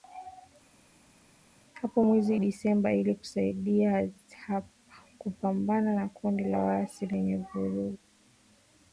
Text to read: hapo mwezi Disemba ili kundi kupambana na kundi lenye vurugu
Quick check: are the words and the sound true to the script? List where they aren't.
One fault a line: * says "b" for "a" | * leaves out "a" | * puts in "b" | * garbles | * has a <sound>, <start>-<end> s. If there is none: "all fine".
* says "kusaidia" for "kundi"
* puts in "la waasi"